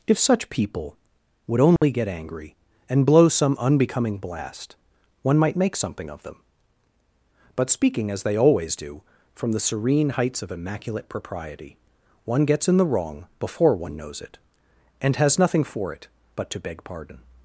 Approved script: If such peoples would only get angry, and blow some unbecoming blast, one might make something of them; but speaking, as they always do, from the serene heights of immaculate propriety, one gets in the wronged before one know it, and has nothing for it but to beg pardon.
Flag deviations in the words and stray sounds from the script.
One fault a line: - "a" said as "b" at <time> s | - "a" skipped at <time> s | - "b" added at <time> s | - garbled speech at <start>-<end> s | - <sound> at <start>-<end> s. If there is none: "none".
- "peoples" said as "people" at 0.5 s
- dropout at 1.8-1.8 s
- "wronged" said as "wrong" at 12.9 s
- "know" said as "knows" at 14.0 s